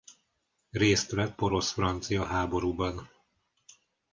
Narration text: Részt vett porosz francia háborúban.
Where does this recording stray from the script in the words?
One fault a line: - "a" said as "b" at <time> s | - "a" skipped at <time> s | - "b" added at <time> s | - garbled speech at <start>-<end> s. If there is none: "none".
none